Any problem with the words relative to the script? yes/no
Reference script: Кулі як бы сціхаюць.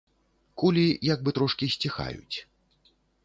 yes